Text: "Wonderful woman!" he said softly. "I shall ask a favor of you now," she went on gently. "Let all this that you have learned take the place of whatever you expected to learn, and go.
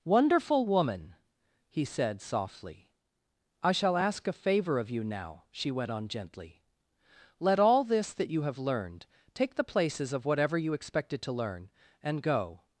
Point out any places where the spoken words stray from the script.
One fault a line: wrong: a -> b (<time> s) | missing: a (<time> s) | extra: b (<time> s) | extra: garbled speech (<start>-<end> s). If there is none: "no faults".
wrong: place -> places (9.6 s)